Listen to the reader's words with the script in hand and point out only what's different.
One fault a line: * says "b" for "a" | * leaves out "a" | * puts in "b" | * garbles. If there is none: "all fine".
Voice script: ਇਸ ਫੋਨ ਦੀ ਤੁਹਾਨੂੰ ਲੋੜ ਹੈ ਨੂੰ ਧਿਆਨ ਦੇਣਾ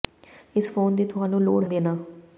* leaves out "ਹੈ ਨੂੰ ਧਿਆਨ"